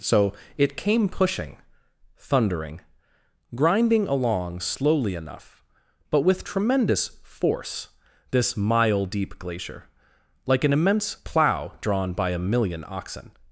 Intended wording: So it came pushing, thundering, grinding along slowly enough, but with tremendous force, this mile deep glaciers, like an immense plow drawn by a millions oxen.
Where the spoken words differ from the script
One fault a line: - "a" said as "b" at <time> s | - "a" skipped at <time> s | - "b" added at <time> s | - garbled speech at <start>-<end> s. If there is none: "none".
- "glaciers" said as "glacier" at 9.4 s
- "millions" said as "million" at 12.4 s